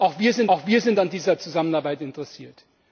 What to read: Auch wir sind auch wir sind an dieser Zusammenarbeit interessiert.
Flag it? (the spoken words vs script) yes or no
no